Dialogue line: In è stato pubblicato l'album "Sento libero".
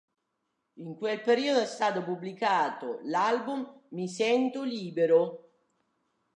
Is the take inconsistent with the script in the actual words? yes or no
yes